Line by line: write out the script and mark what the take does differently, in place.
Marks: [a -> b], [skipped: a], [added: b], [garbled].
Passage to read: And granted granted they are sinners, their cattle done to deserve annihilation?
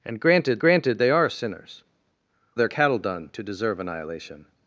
And granted granted they are sinners, their cattle done to deserve annihilation?